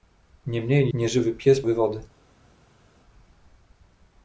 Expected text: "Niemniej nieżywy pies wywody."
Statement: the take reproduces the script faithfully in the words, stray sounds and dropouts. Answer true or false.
true